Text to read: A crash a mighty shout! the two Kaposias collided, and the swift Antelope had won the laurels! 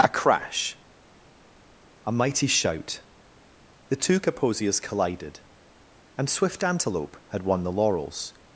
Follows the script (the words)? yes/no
no